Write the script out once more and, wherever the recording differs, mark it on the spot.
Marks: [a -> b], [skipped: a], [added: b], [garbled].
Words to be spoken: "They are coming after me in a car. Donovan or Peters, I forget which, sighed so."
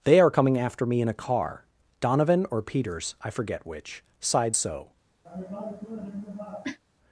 "They are coming after me in a car. Donovan or Peters, I forget which, sighed so."